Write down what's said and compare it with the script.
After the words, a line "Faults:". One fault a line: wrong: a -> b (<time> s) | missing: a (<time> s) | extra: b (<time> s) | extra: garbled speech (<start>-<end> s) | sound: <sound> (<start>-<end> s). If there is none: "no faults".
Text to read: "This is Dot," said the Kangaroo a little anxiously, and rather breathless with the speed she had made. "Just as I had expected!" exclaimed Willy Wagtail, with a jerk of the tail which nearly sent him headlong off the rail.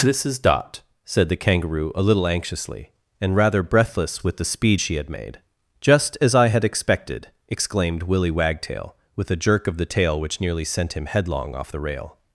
"This is Dot," said the Kangaroo a little anxiously, and rather breathless with the speed she had made. "Just as I had expected!" exclaimed Willy Wagtail, with a jerk of the tail which nearly sent him headlong off the rail.
Faults:
no faults